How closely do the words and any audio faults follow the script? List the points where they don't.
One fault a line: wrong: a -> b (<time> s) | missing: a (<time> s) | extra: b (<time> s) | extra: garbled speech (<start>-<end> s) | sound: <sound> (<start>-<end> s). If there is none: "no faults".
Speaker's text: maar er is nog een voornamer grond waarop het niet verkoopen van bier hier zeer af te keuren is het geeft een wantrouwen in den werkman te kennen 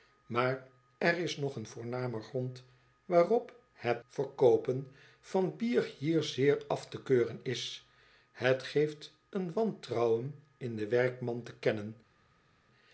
missing: niet (4.0 s)